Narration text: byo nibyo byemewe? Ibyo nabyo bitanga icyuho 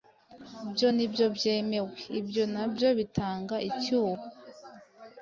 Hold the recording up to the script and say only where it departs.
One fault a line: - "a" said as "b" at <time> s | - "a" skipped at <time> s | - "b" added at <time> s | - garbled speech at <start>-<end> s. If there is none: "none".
none